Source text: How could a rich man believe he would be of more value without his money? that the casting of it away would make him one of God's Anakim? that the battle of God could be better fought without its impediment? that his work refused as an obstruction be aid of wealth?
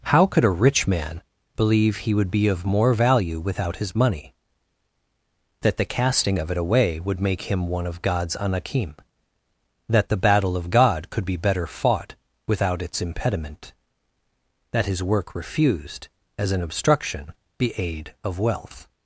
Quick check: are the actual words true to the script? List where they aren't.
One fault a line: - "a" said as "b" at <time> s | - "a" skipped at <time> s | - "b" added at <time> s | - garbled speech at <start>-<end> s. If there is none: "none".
none